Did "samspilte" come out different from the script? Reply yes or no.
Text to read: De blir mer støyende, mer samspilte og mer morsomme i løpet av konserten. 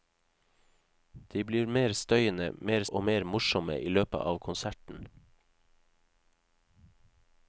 yes